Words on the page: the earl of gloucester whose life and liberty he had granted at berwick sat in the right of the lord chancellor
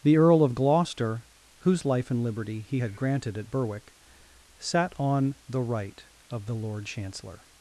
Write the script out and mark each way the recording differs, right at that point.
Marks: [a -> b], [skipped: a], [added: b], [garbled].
the earl of gloucester whose life and liberty he had granted at berwick sat [in -> on] the right of the lord chancellor